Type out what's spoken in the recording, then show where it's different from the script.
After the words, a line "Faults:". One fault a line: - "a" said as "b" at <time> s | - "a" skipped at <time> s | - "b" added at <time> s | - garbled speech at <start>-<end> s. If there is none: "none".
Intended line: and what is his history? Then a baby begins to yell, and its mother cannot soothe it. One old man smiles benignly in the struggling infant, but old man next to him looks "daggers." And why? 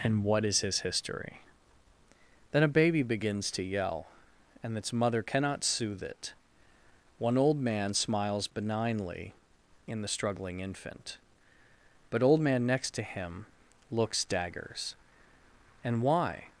and what is his history? Then a baby begins to yell, and its mother cannot soothe it. One old man smiles benignly in the struggling infant, but old man next to him looks "daggers." And why?
Faults:
none